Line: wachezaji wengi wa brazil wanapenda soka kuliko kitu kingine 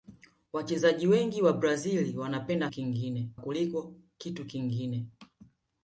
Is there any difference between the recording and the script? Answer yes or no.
yes